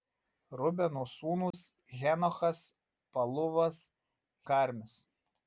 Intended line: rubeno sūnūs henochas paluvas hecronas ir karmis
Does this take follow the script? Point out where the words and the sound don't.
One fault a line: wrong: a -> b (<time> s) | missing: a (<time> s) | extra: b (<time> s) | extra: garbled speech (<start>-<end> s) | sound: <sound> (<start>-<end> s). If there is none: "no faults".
sound: dropout (1.5-1.5 s)
missing: hecronas ir (3.8 s)